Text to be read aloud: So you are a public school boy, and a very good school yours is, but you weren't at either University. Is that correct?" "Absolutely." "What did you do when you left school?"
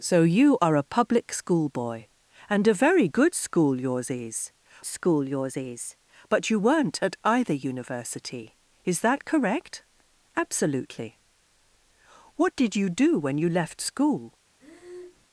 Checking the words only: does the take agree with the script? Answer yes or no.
no